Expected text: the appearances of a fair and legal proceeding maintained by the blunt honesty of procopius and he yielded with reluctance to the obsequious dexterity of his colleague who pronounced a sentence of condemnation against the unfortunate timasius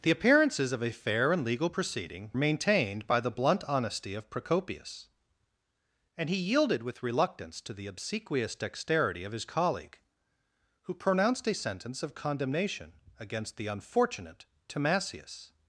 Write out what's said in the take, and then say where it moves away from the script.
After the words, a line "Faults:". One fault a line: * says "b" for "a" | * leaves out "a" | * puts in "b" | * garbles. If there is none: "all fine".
the appearances of a fair and legal proceeding maintained by the blunt honesty of procopius and he yielded with reluctance to the obsequious dexterity of his colleague who pronounced a sentence of condemnation against the unfortunate timasius
Faults:
all fine